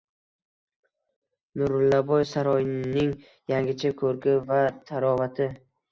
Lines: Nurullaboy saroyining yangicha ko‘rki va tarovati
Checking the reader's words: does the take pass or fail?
pass